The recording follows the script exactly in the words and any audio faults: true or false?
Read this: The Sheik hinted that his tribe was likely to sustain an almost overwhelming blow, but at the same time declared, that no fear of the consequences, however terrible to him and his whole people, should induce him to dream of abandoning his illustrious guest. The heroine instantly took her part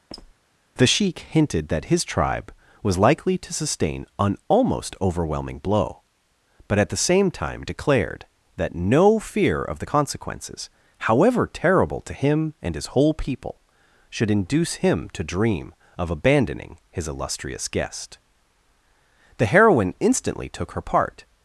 false